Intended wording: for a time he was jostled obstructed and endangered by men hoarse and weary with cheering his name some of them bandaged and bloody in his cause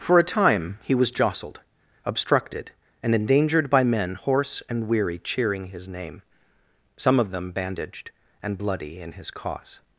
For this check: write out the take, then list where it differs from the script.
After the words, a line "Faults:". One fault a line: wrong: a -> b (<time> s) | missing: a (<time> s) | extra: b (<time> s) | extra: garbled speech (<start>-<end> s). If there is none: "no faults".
for a time he was jostled obstructed and endangered by men hoarse and weary cheering his name some of them bandaged and bloody in his cause
Faults:
missing: with (5.2 s)